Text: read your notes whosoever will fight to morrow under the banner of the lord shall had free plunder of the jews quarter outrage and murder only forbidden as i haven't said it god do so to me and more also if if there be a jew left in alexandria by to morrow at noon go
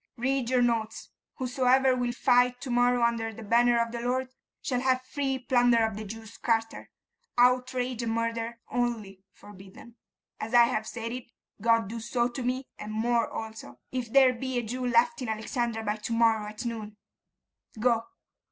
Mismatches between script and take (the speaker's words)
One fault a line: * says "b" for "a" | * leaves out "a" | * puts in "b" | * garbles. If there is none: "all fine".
* says "have" for "had"
* says "have" for "haven't"
* leaves out "if"